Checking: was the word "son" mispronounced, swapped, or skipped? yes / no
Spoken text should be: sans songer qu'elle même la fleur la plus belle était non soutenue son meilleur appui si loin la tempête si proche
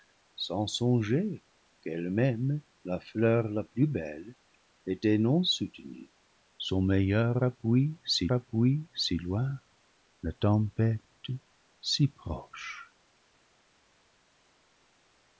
no